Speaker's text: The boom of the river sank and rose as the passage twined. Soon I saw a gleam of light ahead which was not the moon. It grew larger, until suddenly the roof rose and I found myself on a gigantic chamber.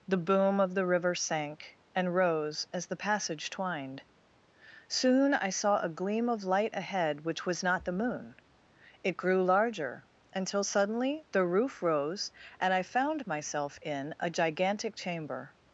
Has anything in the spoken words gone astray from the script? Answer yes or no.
yes